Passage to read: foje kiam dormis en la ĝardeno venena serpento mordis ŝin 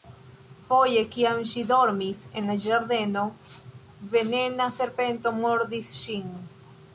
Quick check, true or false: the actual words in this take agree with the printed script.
false